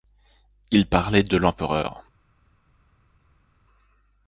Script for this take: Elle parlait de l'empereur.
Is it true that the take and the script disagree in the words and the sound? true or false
true